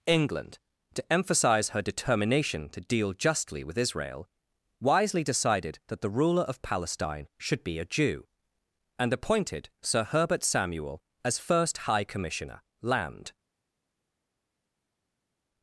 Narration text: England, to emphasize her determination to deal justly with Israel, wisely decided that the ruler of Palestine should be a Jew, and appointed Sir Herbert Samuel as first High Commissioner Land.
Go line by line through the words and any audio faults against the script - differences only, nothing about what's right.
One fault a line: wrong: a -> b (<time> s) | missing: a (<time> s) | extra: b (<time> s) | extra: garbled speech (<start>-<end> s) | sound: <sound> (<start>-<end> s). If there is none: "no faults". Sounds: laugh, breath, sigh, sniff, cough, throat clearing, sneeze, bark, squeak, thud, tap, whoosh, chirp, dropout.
no faults